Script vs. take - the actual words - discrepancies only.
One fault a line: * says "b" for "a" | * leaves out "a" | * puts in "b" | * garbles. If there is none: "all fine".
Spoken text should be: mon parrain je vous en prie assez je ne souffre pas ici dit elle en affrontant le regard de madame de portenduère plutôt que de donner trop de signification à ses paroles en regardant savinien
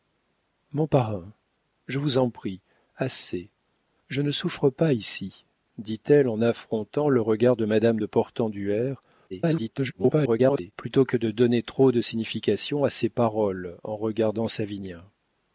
* garbles